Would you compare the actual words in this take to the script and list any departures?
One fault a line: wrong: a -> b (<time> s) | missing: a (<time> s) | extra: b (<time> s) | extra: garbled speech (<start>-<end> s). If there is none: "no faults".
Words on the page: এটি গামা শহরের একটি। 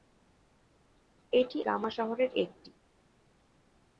no faults